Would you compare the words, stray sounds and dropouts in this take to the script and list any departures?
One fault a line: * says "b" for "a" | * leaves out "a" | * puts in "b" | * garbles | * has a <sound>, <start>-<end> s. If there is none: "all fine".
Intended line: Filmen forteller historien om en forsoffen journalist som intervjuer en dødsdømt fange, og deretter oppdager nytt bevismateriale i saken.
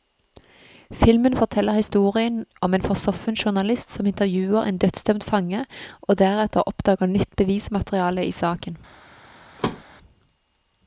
* has a thud, 9.6-9.8 s